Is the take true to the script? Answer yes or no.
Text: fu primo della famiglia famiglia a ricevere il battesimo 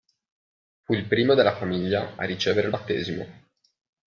no